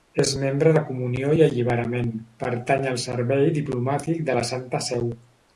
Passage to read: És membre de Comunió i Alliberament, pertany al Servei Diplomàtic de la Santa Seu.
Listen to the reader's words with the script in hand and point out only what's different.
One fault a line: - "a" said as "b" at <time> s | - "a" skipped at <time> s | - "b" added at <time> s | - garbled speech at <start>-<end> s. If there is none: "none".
none